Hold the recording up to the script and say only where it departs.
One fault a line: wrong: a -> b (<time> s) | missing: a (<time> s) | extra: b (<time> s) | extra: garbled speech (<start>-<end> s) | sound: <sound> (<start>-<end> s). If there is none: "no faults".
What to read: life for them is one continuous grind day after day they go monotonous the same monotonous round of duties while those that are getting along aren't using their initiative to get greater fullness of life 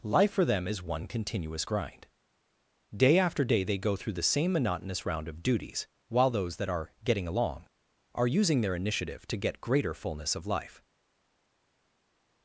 wrong: monotonous -> through (4.0 s)
wrong: aren't -> are (8.1 s)